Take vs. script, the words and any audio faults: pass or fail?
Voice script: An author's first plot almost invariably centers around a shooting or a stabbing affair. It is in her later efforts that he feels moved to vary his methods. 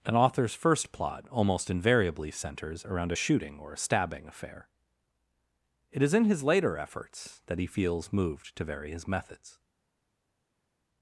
fail